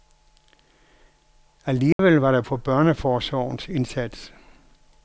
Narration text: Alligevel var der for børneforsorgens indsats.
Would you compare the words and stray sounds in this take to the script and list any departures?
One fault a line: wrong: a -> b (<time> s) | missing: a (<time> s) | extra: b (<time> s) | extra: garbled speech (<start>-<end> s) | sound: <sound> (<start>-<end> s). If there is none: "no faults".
sound: dropout (1.9-2.0 s)